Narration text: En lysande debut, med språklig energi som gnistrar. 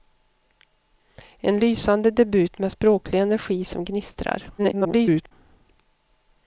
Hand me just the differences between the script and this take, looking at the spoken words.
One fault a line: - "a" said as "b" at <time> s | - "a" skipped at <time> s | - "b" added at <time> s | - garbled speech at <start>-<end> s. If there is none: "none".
- garbled speech at 4.6-5.3 s